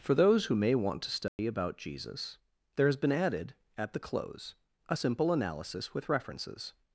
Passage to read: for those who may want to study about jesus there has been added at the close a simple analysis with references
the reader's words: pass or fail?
pass